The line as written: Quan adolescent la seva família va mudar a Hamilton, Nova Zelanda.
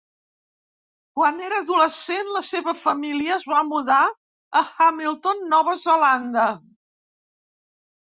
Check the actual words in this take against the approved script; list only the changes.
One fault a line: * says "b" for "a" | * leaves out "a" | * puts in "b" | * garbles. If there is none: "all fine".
* puts in "era"
* puts in "es"